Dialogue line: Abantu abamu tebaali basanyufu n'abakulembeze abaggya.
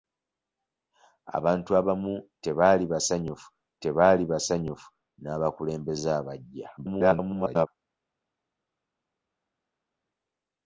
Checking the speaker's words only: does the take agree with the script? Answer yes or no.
no